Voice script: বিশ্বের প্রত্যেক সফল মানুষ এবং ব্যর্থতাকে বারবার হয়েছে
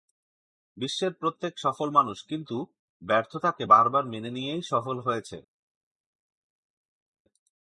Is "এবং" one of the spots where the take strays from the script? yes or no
yes